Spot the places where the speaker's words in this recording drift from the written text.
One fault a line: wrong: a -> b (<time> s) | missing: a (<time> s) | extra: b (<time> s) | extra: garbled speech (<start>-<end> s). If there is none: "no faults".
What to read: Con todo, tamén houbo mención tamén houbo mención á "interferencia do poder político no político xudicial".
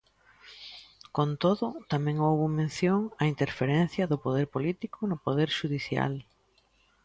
missing: tamén houbo mención (3.0 s)
wrong: político -> poder (5.2 s)